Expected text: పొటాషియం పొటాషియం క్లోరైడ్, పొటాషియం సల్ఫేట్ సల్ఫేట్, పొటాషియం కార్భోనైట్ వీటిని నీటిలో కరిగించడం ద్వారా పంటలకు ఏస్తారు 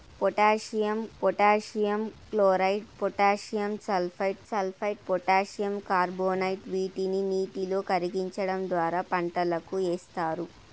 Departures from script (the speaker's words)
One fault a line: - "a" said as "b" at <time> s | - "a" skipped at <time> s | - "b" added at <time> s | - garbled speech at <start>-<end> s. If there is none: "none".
none